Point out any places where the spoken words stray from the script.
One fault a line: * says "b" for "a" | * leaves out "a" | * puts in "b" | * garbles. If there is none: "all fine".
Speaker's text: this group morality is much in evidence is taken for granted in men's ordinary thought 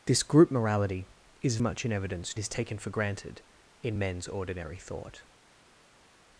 all fine